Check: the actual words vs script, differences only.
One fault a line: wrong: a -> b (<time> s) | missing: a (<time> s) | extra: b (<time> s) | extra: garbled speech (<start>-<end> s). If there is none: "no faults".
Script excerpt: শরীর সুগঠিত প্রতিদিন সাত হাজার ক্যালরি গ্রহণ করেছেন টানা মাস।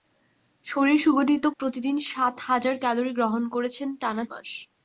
no faults